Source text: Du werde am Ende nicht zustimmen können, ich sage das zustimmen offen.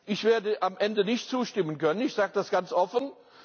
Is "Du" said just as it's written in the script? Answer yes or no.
no